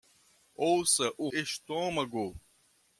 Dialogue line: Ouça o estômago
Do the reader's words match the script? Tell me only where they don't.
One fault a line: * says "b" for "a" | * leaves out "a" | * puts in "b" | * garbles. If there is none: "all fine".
all fine